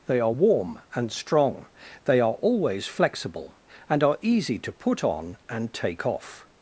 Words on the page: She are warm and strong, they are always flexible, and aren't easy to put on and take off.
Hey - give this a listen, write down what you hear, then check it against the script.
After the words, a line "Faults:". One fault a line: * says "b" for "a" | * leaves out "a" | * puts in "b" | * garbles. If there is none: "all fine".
They are warm and strong, they are always flexible, and are easy to put on and take off.
Faults:
* says "They" for "She"
* says "are" for "aren't"